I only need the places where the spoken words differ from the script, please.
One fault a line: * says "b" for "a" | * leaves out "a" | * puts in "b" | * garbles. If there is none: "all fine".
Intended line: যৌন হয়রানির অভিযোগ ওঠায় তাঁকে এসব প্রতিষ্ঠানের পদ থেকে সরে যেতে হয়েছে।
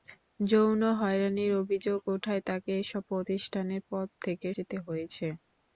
* leaves out "সরে"